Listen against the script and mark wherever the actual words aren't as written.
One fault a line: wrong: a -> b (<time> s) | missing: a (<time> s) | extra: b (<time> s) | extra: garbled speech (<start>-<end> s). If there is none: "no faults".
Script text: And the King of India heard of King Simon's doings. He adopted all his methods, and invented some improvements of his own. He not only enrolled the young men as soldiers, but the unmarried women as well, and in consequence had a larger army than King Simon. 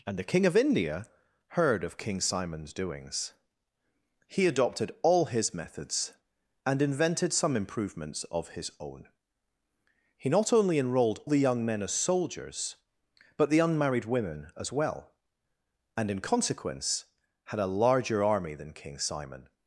no faults